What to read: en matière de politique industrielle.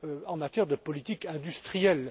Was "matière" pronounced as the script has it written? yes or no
yes